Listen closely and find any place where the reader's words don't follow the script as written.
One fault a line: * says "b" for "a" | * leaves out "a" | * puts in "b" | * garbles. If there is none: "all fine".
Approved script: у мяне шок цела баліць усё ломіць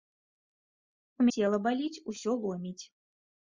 * leaves out "мяне шок"